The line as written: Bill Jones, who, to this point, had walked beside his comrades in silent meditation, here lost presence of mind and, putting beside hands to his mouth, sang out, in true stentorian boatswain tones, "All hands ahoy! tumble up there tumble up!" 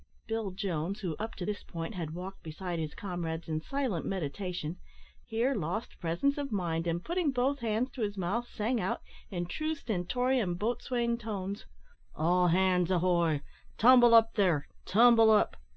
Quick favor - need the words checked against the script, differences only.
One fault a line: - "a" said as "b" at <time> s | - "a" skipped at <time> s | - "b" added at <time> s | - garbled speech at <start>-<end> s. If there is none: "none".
- "up" added at 1.2 s
- "beside" said as "both" at 7.3 s